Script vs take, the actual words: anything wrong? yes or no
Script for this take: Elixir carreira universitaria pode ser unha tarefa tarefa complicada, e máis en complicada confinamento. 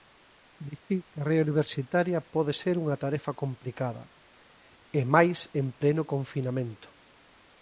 yes